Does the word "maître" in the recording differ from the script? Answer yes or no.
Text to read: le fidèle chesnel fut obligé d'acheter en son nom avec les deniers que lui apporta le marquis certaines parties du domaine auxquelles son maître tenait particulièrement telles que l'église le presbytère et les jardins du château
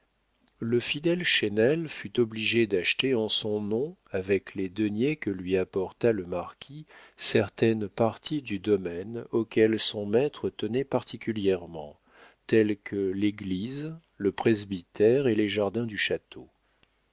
no